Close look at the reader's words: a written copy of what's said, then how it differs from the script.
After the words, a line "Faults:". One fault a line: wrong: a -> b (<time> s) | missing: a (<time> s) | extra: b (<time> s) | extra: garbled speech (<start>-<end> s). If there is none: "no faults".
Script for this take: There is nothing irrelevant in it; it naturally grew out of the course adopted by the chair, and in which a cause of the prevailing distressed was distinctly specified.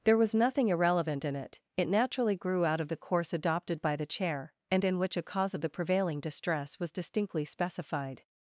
There was nothing irrelevant in it; it naturally grew out of the course adopted by the chair, and in which a cause of the prevailing distress was distinctly specified.
Faults:
wrong: is -> was (0.2 s)
wrong: distressed -> distress (6.2 s)